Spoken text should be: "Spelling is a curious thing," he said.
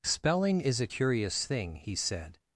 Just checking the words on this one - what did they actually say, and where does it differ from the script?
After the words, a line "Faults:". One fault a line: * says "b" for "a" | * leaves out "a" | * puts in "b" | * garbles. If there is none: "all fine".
"Spelling is a curious thing," he said.
Faults:
all fine